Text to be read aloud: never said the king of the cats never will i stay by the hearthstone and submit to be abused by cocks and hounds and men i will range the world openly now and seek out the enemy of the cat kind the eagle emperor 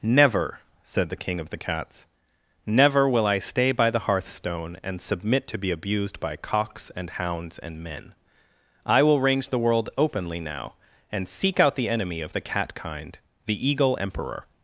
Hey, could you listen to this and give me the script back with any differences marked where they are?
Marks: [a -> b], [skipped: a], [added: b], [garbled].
never said the king of the cats never will i stay by the hearthstone and submit to be abused by cocks and hounds and men i will range the world openly now and seek out the enemy of the cat kind the eagle emperor